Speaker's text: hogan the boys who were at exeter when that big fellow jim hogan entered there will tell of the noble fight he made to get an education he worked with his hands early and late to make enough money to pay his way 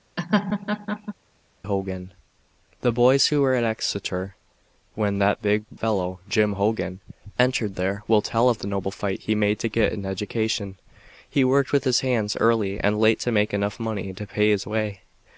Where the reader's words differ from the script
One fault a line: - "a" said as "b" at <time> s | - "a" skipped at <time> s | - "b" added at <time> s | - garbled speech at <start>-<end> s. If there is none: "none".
none